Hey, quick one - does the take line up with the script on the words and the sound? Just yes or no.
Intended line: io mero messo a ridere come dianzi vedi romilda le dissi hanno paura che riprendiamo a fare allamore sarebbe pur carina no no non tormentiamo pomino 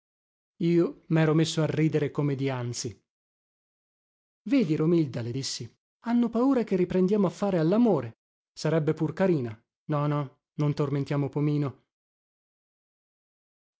yes